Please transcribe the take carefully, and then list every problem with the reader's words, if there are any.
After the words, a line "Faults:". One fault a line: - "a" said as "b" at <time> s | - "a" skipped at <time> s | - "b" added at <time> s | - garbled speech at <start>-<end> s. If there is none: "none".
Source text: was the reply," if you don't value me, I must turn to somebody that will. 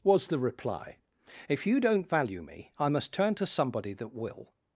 was the reply," if you don't value me, I must turn to somebody that will.
Faults:
none